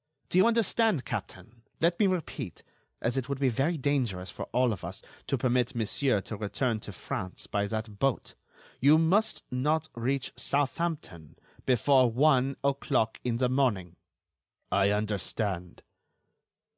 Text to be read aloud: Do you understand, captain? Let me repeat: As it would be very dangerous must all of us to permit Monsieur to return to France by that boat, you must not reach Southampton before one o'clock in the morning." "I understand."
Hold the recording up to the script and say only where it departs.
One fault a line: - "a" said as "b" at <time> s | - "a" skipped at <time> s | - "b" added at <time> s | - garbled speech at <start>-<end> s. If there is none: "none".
- "must" said as "for" at 4.3 s